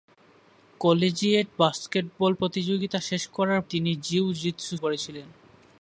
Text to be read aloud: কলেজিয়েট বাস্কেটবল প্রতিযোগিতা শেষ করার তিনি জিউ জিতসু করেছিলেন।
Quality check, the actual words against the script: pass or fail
pass